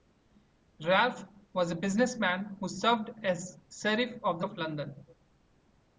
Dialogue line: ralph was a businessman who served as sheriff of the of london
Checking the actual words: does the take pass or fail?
pass